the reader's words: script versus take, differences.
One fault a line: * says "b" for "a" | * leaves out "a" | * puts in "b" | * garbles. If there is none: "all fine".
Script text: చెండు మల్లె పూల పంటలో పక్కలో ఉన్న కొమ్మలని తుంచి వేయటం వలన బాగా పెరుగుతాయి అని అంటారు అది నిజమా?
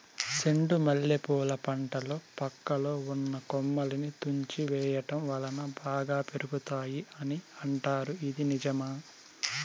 * says "ఇది" for "అది"